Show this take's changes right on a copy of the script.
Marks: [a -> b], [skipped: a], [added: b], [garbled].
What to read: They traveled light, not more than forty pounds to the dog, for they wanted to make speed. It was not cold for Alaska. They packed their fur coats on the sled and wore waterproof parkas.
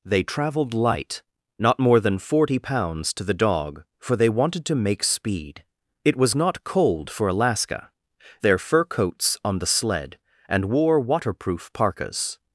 They traveled light, not more than forty pounds to the dog, for they wanted to make speed. It was not cold for Alaska. [skipped: They packed] their fur coats on the sled and wore waterproof parkas.